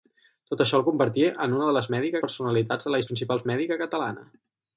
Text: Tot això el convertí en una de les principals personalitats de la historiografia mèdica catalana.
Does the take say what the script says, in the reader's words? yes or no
no